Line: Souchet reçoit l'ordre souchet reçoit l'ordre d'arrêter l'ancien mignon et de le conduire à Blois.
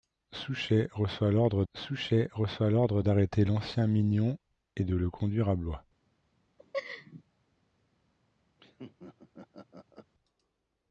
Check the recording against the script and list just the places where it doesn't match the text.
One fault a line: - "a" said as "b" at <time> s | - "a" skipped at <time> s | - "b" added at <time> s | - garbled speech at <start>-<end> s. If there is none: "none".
none